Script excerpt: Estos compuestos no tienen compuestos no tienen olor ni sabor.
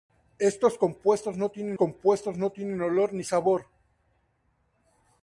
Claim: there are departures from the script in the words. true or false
false